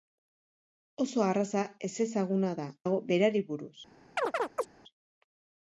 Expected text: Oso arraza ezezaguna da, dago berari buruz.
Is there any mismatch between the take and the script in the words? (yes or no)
no